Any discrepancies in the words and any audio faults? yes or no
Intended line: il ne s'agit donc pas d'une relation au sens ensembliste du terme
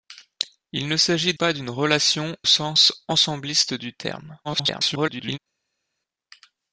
yes